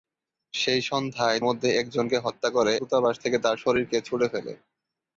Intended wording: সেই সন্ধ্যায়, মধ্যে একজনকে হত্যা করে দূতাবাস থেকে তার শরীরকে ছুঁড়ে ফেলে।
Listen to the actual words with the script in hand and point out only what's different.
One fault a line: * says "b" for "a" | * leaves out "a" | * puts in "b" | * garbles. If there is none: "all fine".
all fine